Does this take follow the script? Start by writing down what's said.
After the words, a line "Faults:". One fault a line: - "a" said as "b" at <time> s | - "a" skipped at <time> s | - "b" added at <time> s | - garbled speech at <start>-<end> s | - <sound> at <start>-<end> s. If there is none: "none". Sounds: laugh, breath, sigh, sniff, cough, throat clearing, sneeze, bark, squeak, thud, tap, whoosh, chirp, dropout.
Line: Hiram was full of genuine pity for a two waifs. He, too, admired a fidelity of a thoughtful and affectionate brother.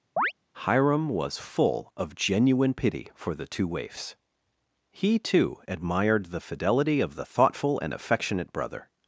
Hiram was full of genuine pity for the two waifs. He, too, admired the fidelity of the thoughtful and affectionate brother.
Faults:
- chirp at 0.2-0.3 s
- "a" said as "the" at 3.3 s
- "a" said as "the" at 6.3 s
- "a" said as "the" at 7.2 s